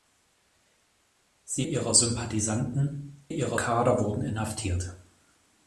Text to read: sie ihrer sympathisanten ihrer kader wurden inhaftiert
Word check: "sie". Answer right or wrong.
right